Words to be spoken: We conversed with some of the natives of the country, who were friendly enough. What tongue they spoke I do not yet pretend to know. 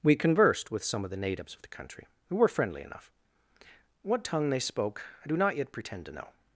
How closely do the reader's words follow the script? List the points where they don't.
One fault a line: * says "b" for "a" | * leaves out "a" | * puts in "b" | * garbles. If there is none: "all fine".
all fine